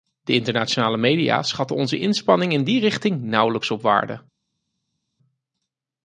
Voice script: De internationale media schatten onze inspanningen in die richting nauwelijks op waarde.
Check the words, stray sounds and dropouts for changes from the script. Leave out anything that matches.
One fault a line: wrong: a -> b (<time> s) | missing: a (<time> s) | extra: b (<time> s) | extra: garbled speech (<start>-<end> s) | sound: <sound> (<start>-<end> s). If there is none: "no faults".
no faults